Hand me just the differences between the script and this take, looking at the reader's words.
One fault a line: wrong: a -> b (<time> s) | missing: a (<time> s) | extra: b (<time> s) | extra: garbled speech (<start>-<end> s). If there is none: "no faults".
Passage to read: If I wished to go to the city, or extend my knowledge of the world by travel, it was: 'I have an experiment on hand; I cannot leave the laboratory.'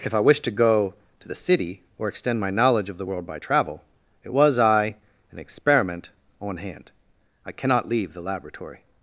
missing: have (5.0 s)